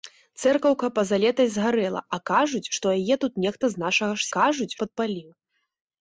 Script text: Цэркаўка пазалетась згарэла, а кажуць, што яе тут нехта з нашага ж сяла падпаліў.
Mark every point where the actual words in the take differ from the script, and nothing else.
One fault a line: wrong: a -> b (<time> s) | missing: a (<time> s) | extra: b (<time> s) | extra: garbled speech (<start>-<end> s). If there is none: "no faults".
wrong: сяла -> кажуць (4.4 s)